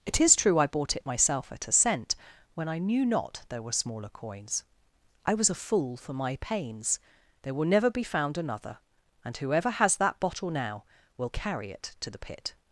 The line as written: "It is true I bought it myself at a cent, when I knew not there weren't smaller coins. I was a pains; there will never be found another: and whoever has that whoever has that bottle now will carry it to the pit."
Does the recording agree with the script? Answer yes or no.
no